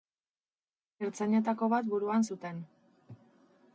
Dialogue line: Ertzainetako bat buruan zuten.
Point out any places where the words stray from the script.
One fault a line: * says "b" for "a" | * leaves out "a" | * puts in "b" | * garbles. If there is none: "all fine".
all fine